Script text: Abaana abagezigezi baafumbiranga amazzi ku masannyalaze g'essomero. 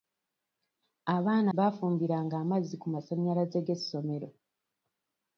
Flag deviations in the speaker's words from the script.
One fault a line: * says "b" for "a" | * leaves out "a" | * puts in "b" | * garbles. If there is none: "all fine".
* leaves out "abagezigezi"